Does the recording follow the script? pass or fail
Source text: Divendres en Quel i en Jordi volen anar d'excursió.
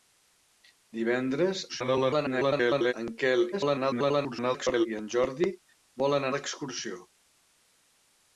fail